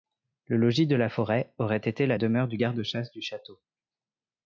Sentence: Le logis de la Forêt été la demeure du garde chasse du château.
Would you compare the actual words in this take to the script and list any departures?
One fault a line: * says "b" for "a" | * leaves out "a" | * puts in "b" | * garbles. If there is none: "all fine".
* puts in "aurait"